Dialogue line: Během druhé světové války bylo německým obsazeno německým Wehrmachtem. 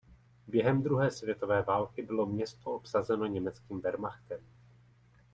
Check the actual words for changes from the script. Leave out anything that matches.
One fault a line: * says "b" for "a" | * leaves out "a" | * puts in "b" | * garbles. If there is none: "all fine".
* says "město" for "německým"